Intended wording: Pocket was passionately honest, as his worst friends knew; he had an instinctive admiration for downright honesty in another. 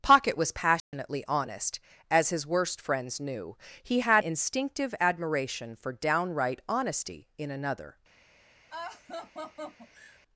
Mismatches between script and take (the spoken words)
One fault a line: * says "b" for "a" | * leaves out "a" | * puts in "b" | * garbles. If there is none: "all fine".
* leaves out "an"